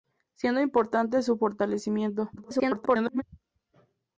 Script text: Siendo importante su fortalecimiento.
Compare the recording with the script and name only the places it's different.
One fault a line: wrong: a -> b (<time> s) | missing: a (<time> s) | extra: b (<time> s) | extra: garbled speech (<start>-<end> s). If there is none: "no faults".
extra: garbled speech (2.4-3.2 s)